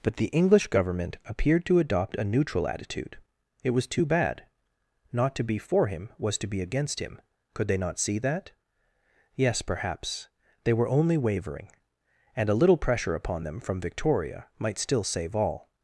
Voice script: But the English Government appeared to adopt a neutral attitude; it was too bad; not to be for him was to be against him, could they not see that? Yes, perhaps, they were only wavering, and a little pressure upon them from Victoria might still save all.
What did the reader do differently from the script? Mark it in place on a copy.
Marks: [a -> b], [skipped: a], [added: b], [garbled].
But the English Government appeared to adopt a neutral attitude; it was too bad; not to be for him was to be against him, could they not see that? Yes, perhaps, they were only wavering, and a little pressure upon them from Victoria might still save all.